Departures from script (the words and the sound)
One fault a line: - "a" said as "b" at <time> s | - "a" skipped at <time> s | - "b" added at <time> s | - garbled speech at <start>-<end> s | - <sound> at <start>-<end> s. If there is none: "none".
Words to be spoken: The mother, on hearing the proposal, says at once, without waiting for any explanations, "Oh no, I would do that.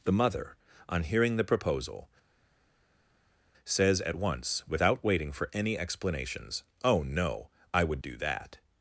none